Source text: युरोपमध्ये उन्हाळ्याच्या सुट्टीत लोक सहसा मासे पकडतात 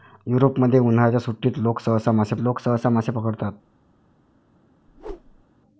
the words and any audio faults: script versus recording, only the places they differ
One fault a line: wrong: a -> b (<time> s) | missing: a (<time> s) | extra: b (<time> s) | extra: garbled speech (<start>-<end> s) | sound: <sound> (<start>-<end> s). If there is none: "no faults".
extra: लोक सहसा मासे (2.4 s)
sound: whoosh (4.9-5.4 s)